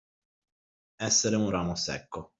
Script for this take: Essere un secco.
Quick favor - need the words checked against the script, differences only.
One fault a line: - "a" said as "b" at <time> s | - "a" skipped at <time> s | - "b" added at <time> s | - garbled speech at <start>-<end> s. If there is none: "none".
- "ramo" added at 1.5 s